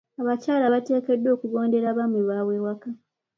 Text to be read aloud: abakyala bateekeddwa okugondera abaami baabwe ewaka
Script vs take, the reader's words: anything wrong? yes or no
no